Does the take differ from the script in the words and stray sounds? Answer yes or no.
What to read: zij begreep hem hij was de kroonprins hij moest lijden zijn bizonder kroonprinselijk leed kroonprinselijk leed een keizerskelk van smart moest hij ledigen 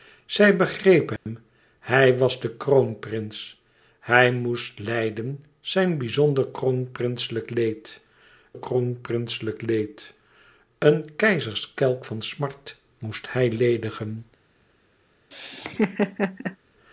yes